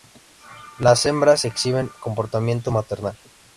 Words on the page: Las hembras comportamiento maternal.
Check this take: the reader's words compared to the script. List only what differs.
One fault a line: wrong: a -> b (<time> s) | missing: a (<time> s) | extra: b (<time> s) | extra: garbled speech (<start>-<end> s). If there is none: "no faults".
extra: exhiben (1.4 s)